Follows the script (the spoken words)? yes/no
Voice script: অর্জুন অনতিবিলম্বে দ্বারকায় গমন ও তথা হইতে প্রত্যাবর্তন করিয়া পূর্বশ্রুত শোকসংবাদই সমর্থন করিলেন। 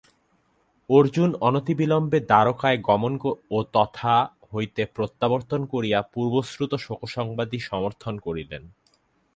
yes